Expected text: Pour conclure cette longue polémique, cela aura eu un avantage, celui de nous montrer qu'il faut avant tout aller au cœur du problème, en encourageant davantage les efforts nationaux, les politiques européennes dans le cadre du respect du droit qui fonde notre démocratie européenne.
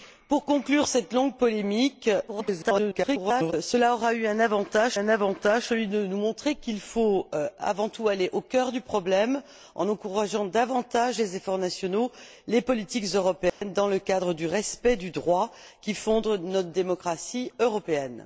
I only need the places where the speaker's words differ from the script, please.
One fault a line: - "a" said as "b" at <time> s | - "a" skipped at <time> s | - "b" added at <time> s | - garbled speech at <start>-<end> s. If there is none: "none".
- garbled speech at 2.3-3.5 s
- "un avantage" added at 4.9 s